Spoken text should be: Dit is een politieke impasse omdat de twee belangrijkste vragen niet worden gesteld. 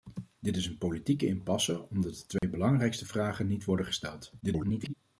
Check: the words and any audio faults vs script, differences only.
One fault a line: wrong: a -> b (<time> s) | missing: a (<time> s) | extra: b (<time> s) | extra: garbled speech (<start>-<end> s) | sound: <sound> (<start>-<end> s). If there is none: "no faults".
sound: dropout (2.4-2.4 s)
extra: garbled speech (4.4-4.9 s)